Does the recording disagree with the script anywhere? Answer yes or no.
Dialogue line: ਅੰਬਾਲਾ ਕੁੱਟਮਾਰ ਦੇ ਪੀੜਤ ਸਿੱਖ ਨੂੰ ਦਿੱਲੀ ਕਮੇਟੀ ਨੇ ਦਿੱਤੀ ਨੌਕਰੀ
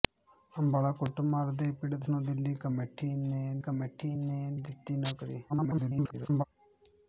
yes